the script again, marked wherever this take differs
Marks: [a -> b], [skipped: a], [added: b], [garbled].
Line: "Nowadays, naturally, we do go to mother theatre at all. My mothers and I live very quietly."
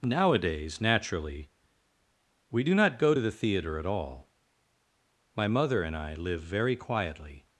"Nowadays, naturally, we do [added: not] go to [mother -> the] theatre at all. My [mothers -> mother] and I live very quietly."